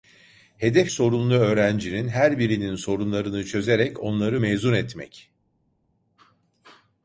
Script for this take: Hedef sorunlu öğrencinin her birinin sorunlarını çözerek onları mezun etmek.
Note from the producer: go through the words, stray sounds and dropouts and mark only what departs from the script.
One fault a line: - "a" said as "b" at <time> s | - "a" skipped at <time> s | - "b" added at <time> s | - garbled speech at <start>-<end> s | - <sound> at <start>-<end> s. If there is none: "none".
none